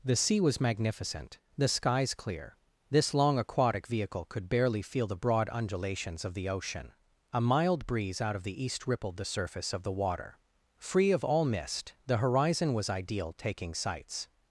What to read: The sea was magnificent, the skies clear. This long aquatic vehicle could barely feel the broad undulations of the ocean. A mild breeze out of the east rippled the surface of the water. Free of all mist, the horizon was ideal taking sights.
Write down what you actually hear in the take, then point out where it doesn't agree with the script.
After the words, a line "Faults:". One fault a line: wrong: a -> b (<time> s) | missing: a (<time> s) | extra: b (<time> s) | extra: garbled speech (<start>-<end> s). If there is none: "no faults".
The sea was magnificent, the skies clear. This long aquatic vehicle could barely feel the broad undulations of the ocean. A mild breeze out of the east rippled the surface of the water. Free of all mist, the horizon was ideal taking sights.
Faults:
no faults